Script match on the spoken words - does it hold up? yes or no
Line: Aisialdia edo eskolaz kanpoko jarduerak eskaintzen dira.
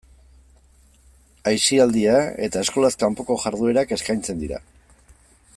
no